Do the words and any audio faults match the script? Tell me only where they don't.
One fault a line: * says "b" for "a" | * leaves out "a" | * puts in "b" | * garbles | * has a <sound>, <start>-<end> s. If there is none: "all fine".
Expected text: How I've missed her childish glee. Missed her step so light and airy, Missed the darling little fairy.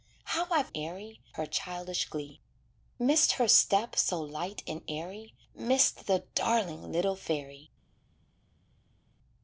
* says "airy" for "missed"